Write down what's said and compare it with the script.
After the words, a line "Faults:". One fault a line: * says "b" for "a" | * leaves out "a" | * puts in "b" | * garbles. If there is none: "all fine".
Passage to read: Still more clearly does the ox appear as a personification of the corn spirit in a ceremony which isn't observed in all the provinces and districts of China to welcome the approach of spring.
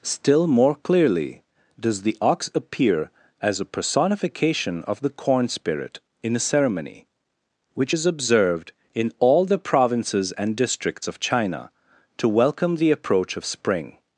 Still more clearly does the ox appear as a personification of the corn spirit in a ceremony which is observed in all the provinces and districts of China to welcome the approach of spring.
Faults:
* says "is" for "isn't"